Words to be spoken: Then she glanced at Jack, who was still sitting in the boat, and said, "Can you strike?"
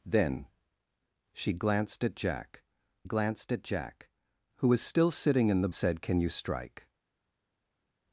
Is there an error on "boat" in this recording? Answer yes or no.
yes